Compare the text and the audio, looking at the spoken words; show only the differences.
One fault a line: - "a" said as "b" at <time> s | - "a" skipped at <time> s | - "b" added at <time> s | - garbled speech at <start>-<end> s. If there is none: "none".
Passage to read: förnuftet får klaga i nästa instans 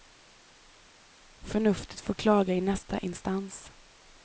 none